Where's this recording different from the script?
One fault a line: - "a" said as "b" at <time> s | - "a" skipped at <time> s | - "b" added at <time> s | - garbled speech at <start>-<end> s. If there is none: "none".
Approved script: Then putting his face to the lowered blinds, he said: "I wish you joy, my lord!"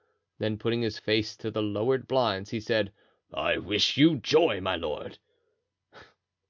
none